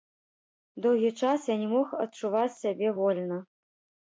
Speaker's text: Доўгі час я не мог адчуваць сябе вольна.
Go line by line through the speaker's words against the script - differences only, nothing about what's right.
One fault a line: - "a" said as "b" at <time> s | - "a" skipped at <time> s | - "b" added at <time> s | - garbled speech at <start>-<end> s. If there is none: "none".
none